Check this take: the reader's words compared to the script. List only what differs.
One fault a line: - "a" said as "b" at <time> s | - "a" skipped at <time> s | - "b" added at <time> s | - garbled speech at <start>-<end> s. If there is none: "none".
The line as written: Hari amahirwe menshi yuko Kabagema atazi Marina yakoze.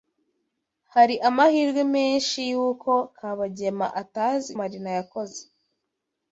none